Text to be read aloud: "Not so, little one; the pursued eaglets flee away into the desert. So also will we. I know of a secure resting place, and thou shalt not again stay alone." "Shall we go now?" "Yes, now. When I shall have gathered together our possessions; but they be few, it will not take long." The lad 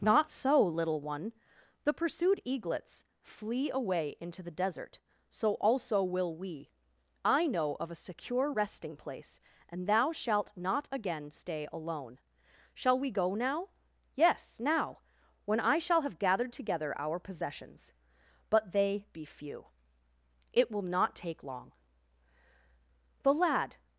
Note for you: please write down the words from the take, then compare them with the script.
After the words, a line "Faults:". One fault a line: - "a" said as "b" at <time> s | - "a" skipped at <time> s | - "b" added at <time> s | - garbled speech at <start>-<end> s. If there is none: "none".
"Not so, little one; the pursued eaglets flee away into the desert. So also will we. I know of a secure resting place, and thou shalt not again stay alone." "Shall we go now?" "Yes, now. When I shall have gathered together our possessions; but they be few, it will not take long." The lad
Faults:
none